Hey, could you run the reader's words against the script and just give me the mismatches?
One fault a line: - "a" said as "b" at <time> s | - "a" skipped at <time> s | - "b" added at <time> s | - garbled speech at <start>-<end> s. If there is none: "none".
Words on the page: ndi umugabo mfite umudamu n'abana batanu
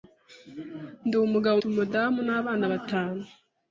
- "mfite" skipped at 1.6 s